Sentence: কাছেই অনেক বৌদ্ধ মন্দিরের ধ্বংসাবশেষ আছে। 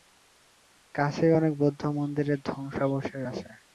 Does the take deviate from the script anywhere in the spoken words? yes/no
no